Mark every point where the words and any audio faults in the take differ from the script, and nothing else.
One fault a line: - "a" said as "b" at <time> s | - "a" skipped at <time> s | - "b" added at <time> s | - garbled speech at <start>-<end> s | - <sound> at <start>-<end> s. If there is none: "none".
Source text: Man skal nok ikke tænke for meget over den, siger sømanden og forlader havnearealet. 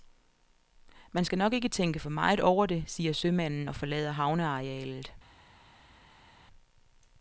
- "den" said as "det" at 2.7 s